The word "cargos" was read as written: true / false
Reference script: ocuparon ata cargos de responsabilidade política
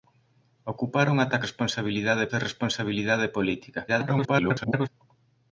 false